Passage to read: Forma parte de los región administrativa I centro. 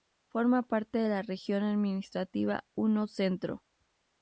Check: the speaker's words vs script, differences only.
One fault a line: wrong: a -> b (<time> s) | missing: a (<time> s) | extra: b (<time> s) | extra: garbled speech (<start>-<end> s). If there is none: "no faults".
wrong: los -> la (1.1 s)